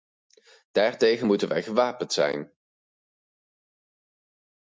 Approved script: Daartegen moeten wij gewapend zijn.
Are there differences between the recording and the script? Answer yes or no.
no